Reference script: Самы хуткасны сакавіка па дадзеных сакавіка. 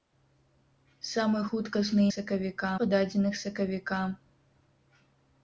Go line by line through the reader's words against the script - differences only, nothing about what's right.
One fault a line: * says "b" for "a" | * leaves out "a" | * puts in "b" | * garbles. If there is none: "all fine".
all fine